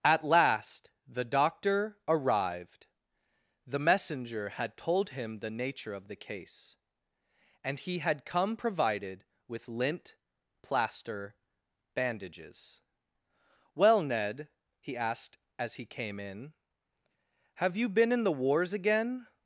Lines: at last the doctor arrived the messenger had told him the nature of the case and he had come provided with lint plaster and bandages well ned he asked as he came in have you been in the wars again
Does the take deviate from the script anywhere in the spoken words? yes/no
yes